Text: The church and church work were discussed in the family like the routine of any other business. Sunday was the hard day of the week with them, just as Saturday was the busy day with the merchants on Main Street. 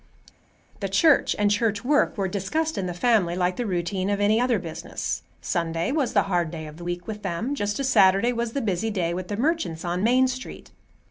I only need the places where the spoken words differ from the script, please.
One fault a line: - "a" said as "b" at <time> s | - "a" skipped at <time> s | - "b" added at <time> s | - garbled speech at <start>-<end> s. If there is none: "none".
none